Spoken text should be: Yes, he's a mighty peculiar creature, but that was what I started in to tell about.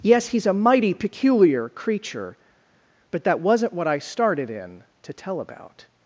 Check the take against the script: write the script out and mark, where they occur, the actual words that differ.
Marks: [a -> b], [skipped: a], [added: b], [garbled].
Yes, he's a mighty peculiar creature, but that [was -> wasn't] what I started in to tell about.